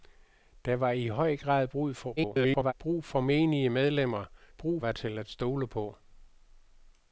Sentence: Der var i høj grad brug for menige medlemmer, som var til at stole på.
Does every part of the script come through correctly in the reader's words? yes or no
no